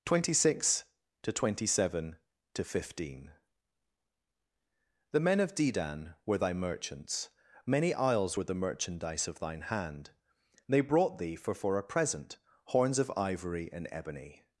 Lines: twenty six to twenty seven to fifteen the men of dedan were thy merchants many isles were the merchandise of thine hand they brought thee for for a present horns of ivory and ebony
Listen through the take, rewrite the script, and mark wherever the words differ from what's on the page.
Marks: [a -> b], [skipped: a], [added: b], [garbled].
twenty six to twenty seven to fifteen the men of dedan were thy merchants many isles were the merchandise of thine hand they brought thee for for a present horns of ivory and ebony